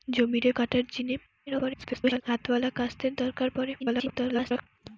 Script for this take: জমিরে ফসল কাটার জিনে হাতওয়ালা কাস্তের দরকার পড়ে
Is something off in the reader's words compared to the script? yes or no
yes